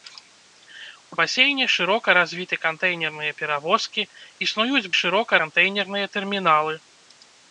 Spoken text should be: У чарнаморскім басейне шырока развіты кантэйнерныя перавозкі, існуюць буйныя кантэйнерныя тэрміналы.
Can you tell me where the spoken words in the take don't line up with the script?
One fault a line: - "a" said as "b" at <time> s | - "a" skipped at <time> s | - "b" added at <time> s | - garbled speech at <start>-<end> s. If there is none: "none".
- "чарнаморскім" skipped at 1.2 s
- "буйныя" said as "шырока" at 5.0 s